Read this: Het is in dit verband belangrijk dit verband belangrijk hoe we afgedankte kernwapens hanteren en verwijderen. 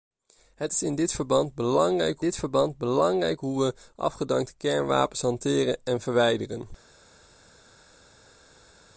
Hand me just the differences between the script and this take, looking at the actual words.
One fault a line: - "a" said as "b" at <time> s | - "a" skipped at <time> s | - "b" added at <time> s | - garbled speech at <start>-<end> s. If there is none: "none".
none